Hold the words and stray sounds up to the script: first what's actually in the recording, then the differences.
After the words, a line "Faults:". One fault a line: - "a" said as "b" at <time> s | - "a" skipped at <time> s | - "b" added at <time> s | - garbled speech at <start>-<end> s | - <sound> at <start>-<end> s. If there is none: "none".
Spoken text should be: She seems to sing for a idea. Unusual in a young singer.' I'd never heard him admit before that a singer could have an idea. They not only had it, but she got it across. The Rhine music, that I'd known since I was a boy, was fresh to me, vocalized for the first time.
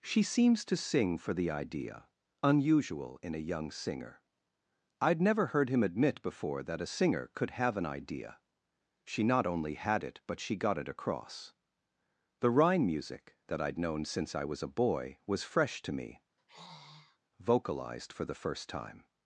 She seems to sing for the idea. Unusual in a young singer.' I'd never heard him admit before that a singer could have an idea. She not only had it, but she got it across. The Rhine music, that I'd known since I was a boy, was fresh to me, vocalized for the first time.
Faults:
- "a" said as "the" at 1.3 s
- "They" said as "She" at 9.0 s
- sigh at 16.4-17.2 s